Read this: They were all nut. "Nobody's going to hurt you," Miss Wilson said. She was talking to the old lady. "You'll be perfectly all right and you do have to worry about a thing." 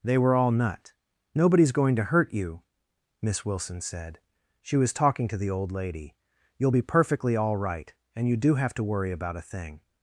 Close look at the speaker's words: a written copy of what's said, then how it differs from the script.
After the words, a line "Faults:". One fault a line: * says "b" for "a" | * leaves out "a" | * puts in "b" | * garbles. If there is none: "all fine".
They were all nut. "Nobody's going to hurt you," Miss Wilson said. She was talking to the old lady. "You'll be perfectly all right and you do have to worry about a thing."
Faults:
all fine